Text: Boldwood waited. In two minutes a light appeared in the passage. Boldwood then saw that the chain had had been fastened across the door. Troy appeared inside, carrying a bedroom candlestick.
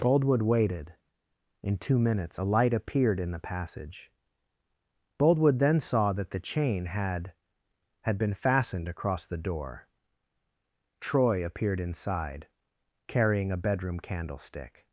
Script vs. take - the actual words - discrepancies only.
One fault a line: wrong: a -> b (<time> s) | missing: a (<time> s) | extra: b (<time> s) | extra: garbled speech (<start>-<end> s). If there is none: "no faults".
no faults